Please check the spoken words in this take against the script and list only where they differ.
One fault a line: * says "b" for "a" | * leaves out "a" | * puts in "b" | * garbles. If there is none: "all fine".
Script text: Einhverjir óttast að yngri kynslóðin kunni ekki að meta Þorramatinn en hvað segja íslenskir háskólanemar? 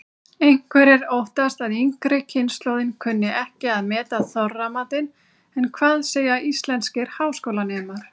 all fine